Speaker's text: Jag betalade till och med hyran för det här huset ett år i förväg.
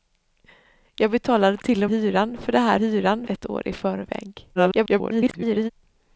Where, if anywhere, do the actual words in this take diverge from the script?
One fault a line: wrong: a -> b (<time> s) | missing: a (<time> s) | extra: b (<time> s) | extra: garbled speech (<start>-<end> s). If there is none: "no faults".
missing: med (1.9 s)
wrong: huset -> hyran (2.7 s)
extra: garbled speech (4.6-5.7 s)